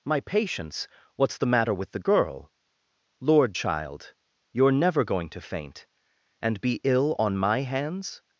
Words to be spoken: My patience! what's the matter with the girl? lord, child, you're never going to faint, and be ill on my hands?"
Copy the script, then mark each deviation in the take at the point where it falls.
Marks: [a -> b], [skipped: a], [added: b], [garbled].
My patience! what's the matter with the girl? lord, child, you're never going to faint, and be ill on my hands?"